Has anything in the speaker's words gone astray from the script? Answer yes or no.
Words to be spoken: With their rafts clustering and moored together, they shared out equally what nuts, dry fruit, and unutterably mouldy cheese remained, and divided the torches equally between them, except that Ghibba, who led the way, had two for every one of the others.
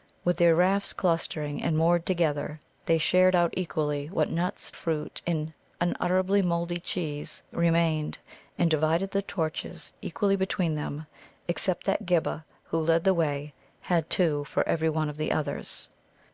yes